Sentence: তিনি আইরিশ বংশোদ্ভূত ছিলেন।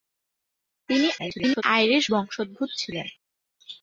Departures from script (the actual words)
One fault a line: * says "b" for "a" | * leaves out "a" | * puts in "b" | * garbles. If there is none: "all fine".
* garbles